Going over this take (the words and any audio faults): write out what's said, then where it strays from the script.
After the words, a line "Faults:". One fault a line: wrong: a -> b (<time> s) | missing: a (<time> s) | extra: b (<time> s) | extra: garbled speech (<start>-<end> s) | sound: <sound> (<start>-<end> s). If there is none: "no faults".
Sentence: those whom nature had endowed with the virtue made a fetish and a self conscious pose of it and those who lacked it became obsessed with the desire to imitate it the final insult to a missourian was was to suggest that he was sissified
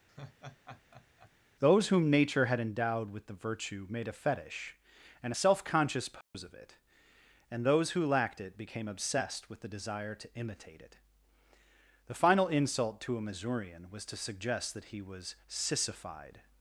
those whom nature had endowed with the virtue made a fetish and a self conscious pose of it and those who lacked it became obsessed with the desire to imitate it the final insult to a missourian was to suggest that he was sissified
Faults:
sound: laugh (0.1-1.3 s)
sound: dropout (6.2-6.3 s)
missing: was (14.0 s)